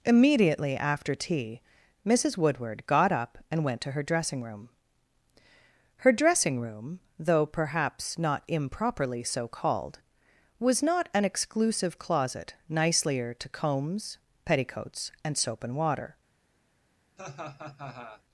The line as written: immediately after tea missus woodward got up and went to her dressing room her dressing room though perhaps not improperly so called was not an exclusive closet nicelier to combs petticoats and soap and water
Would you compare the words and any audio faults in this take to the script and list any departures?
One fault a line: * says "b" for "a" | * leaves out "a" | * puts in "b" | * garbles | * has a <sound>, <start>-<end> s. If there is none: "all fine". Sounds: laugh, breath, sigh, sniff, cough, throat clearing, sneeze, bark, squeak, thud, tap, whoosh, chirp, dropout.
* has a laugh, 17.2-18.2 s